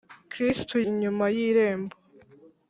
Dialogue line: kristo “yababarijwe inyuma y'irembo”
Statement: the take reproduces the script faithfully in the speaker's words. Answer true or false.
false